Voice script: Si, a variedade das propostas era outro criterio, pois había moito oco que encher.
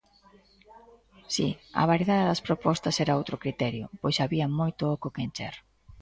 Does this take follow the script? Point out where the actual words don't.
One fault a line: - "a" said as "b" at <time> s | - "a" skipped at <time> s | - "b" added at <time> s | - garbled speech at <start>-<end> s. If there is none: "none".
none